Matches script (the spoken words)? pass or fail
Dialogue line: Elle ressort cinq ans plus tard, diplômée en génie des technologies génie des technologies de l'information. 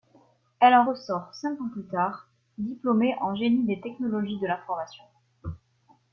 fail